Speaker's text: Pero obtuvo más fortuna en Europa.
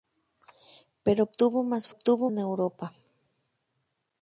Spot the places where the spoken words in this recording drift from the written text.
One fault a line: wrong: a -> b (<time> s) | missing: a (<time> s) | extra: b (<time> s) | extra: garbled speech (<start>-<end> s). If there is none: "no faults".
wrong: fortuna -> obtuvo (1.9 s)